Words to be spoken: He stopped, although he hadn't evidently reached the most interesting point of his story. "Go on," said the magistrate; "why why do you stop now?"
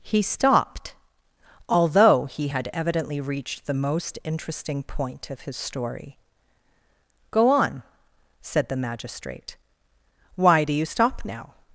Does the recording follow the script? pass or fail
fail